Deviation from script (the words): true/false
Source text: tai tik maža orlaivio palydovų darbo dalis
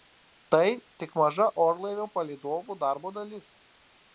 false